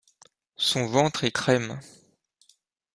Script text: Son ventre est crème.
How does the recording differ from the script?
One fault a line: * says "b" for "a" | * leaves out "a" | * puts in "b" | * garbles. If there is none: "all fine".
all fine